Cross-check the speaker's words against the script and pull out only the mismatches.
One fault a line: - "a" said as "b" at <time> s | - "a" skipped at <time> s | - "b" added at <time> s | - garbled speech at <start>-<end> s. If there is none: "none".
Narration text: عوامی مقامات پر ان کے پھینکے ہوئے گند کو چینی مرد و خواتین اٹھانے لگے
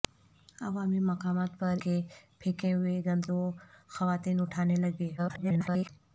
- "ان" skipped at 1.8 s
- "کو چینی مرد" skipped at 3.2 s
- garbled speech at 5.2-5.9 s